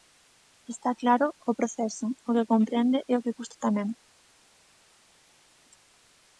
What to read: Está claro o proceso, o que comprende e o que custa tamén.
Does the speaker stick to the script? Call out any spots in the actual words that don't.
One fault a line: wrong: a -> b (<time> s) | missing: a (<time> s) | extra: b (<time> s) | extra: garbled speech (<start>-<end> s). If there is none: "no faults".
no faults